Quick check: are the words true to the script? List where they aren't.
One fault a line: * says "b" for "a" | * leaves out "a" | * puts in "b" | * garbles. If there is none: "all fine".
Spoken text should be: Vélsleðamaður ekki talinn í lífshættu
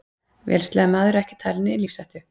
all fine